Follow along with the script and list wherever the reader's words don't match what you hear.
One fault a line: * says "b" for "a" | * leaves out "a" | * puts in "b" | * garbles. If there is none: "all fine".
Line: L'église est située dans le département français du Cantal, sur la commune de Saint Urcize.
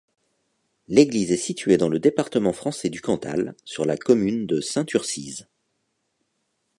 all fine